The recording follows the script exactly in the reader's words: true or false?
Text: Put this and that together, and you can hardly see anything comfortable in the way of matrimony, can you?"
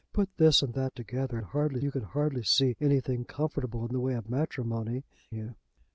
false